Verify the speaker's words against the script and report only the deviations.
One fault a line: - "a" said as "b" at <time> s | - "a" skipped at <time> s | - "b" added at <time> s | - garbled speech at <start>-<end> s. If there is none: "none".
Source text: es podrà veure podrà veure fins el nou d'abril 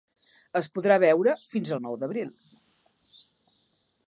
- "podrà veure" skipped at 1.4 s